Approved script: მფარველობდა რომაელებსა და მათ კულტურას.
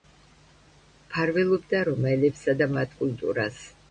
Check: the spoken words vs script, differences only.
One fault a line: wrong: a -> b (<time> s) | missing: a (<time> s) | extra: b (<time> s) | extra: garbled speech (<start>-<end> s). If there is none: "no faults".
no faults